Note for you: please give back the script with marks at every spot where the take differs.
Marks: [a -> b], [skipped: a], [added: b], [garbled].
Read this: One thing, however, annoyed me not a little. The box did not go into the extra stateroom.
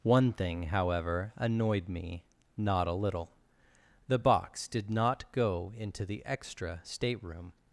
One thing, however, annoyed me not a little. The box did not go into the extra stateroom.